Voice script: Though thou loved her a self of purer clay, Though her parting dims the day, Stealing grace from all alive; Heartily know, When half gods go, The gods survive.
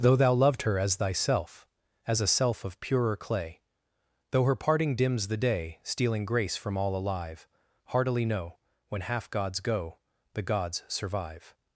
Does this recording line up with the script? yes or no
no